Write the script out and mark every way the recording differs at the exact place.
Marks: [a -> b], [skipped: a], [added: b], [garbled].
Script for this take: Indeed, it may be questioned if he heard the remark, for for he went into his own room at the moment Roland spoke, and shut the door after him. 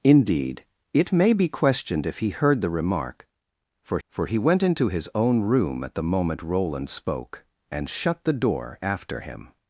Indeed, it may be questioned if he heard the remark, for for he went into his own room at the moment Roland spoke, and shut the door after him.